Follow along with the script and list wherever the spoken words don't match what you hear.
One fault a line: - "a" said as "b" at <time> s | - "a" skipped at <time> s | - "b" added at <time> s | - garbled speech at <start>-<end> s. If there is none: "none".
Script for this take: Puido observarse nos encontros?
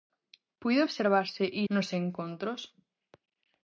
none